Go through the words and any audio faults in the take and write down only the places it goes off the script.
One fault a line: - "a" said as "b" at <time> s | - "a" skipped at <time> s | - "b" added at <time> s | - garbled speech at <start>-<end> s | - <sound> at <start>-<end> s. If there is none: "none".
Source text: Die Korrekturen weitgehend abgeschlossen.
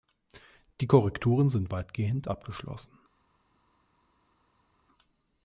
- "sind" added at 1.5 s